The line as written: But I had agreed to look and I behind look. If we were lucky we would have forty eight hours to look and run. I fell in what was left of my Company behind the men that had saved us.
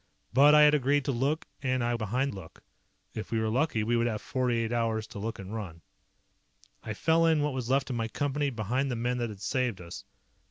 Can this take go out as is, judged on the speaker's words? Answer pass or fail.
pass